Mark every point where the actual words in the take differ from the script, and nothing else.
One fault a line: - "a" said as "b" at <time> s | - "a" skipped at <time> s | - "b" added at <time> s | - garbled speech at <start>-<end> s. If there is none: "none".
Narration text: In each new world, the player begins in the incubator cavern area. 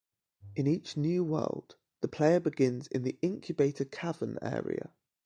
none